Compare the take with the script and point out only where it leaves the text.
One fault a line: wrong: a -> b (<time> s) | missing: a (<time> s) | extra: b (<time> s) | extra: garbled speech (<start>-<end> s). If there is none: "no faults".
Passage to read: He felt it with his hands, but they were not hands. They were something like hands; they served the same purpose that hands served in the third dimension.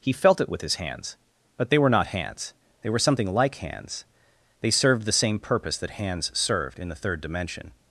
no faults